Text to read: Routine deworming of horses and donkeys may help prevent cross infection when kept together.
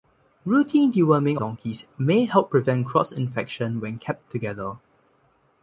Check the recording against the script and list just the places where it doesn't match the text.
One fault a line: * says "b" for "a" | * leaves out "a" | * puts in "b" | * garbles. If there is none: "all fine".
* leaves out "of horses and"